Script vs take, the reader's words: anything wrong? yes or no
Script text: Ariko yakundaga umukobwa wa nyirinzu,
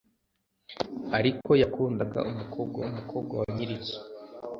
yes